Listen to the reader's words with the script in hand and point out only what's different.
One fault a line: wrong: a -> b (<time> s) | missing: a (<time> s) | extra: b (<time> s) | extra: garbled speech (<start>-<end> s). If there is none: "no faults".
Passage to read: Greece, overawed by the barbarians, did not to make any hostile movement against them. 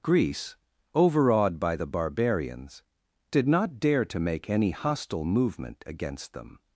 extra: dare (3.8 s)